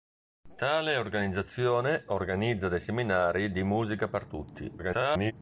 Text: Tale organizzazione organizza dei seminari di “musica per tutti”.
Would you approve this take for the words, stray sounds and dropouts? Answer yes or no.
no